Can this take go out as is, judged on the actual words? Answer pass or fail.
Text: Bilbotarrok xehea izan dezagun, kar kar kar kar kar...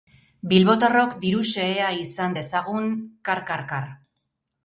fail